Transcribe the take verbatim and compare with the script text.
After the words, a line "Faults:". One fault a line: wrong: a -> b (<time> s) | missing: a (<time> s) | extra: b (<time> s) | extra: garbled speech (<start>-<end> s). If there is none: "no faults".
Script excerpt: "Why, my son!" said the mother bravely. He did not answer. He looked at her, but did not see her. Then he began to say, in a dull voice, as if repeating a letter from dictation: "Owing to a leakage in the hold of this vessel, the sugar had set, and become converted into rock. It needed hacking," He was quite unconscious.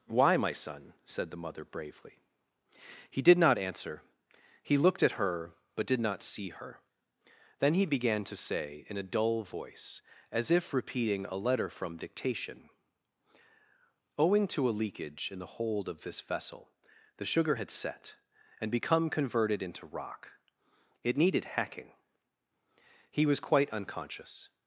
"Why, my son!" said the mother bravely. He did not answer. He looked at her, but did not see her. Then he began to say, in a dull voice, as if repeating a letter from dictation: "Owing to a leakage in the hold of this vessel, the sugar had set, and become converted into rock. It needed hacking," He was quite unconscious.
Faults:
no faults